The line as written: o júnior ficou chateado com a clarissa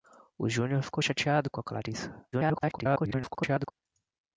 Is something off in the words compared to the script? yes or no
yes